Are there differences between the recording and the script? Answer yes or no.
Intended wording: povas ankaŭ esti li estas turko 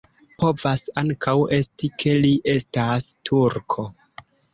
yes